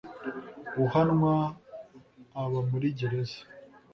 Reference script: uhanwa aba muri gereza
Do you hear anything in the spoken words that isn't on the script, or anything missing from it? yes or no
no